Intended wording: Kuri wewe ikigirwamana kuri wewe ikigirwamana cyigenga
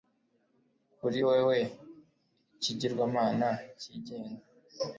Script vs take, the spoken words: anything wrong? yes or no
yes